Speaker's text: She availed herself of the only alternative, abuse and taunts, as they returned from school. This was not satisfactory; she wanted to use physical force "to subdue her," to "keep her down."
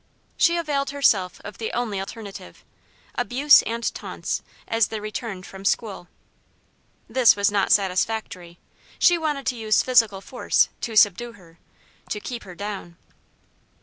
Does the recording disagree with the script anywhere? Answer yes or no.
no